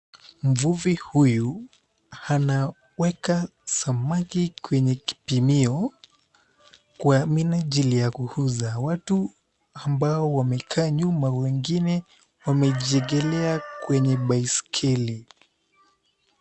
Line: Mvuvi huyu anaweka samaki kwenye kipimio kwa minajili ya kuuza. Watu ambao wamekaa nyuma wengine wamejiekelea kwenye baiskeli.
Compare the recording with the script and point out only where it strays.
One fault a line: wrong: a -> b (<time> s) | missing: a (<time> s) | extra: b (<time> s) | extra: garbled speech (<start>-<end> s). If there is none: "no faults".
no faults